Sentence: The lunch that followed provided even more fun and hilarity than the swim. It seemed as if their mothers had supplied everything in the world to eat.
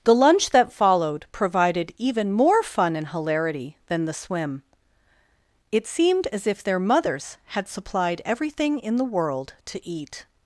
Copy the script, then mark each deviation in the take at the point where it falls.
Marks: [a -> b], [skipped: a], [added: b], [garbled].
The lunch that followed provided even more fun and hilarity than the swim. It seemed as if their mothers had supplied everything in the world to eat.